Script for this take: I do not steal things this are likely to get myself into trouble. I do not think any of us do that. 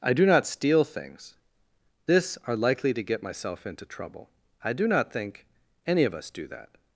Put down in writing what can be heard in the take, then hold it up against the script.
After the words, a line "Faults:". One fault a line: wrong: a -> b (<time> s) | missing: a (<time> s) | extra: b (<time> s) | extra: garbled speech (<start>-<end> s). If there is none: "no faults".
I do not steal things this are likely to get myself into trouble. I do not think any of us do that.
Faults:
no faults